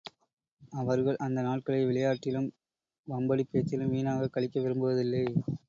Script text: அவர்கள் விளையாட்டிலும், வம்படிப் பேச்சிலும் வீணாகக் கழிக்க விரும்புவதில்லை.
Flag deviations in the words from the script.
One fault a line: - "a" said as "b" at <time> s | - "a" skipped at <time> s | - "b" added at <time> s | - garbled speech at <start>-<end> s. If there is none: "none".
- "அந்த நாட்களை" added at 1.2 s